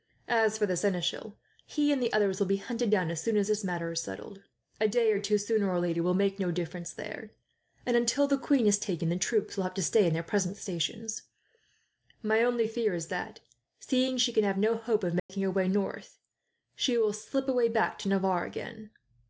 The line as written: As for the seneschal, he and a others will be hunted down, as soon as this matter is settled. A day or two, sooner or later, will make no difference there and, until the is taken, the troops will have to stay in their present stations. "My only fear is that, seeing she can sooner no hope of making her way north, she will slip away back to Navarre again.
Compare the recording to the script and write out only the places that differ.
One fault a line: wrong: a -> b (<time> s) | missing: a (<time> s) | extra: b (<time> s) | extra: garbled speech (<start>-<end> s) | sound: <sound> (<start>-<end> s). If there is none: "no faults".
wrong: a -> the (2.0 s)
extra: queen (8.4 s)
wrong: sooner -> have (14.4 s)
sound: dropout (15.2-15.3 s)